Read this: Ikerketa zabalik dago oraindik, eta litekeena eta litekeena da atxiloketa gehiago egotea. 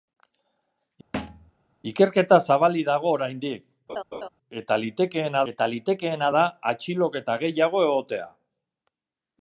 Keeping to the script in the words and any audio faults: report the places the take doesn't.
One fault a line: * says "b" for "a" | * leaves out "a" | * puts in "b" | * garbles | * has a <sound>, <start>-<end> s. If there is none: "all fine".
* has a thud, 1.1-1.5 s
* has a laugh, 3.9-4.3 s